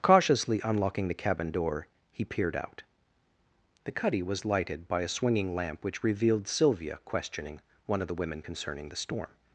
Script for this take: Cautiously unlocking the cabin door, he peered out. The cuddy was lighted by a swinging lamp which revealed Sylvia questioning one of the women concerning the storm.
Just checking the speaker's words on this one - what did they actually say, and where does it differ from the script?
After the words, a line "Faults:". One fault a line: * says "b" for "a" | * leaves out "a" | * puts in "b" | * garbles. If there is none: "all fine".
Cautiously unlocking the cabin door, he peered out. The cuddy was lighted by a swinging lamp which revealed Sylvia questioning one of the women concerning the storm.
Faults:
all fine